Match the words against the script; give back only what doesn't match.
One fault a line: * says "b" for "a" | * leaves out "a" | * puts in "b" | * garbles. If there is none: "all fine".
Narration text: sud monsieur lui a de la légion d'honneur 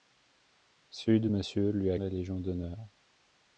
all fine